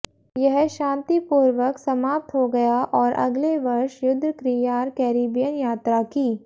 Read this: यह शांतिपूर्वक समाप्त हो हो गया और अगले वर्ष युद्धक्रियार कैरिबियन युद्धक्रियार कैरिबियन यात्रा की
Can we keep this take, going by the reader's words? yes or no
no